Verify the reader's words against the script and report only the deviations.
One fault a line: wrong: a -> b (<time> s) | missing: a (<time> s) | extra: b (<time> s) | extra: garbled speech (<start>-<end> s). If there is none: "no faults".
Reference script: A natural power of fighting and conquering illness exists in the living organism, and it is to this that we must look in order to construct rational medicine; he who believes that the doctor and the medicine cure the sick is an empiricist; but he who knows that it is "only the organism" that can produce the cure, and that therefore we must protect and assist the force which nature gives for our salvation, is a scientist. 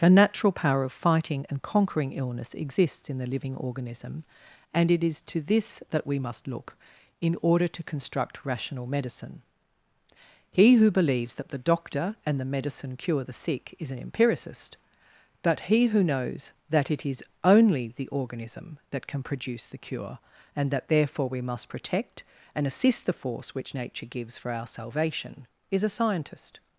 wrong: A -> The (0.0 s)